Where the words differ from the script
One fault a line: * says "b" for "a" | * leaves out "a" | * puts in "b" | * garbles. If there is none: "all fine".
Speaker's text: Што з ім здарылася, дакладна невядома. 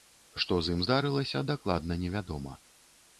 all fine